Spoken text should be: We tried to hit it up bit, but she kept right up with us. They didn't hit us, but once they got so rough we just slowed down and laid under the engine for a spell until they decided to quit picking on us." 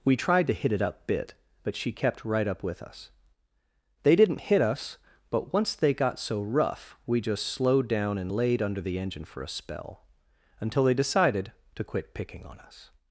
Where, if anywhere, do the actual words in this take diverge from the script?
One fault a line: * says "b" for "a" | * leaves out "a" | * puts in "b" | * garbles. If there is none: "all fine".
all fine